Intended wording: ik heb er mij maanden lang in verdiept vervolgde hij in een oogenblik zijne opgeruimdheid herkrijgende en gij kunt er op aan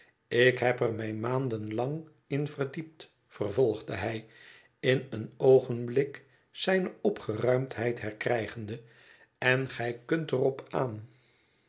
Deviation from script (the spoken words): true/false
false